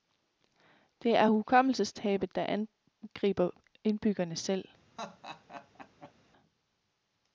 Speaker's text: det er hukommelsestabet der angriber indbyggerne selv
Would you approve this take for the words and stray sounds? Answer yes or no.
no